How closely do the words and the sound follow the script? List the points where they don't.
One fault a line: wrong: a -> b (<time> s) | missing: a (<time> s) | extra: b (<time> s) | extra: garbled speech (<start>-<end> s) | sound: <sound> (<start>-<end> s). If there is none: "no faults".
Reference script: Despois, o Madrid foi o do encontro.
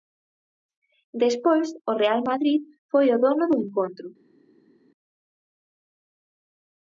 extra: Real (2.0 s)
extra: dono (3.2 s)